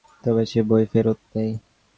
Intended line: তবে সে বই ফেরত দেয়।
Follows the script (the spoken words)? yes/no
yes